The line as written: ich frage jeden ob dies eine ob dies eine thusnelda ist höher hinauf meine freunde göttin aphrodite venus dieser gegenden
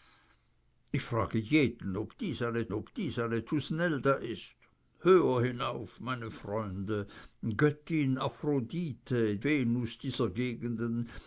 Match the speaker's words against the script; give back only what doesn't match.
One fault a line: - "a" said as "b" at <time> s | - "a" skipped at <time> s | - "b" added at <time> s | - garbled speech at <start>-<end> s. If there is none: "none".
none